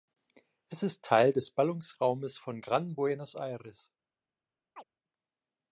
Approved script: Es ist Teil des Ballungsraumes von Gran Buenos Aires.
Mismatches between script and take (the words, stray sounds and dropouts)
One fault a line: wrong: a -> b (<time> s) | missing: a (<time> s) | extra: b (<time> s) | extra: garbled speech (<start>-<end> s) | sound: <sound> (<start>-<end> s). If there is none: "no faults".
sound: chirp (4.8-4.8 s)